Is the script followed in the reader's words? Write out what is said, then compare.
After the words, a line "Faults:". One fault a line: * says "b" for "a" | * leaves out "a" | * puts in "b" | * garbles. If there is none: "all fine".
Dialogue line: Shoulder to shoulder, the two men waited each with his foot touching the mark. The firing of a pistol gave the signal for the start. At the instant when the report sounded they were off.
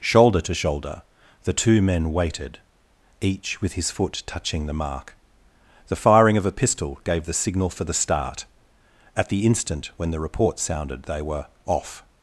Shoulder to shoulder, the two men waited each with his foot touching the mark. The firing of a pistol gave the signal for the start. At the instant when the report sounded they were off.
Faults:
all fine